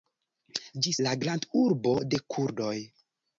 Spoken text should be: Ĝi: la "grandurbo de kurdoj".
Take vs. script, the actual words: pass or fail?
pass